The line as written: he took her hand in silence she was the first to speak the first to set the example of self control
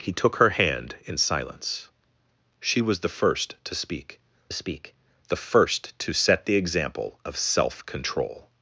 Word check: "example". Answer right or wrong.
right